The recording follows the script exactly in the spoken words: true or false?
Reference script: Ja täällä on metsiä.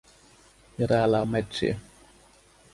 true